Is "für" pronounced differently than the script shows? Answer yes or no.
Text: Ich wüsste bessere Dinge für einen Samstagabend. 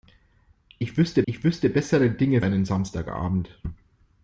yes